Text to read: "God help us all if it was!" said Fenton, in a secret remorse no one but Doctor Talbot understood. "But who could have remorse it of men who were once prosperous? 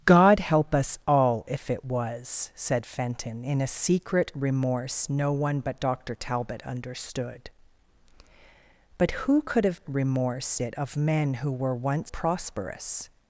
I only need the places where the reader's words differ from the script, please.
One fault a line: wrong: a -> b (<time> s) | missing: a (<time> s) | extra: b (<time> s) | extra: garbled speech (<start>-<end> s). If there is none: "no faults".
no faults